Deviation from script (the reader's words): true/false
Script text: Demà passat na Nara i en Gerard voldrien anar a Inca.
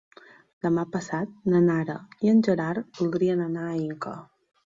false